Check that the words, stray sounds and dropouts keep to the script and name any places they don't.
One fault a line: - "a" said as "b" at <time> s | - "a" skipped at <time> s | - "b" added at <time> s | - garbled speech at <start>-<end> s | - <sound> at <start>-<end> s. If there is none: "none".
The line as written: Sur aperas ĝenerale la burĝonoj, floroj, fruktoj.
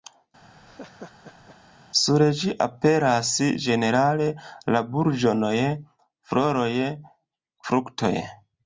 - laugh at 0.5-1.6 s
- "ĝi" added at 2.4 s